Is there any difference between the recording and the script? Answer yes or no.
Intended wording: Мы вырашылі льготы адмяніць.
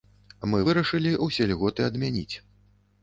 yes